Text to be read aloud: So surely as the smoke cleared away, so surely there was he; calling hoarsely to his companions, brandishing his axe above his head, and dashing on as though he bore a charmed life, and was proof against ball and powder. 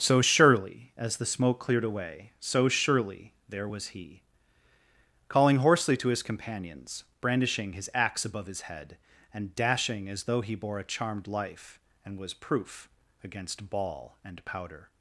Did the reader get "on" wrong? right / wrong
wrong